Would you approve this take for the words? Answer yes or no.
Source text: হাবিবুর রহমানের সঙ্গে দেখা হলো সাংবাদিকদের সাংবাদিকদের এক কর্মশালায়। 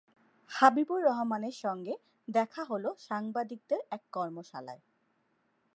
no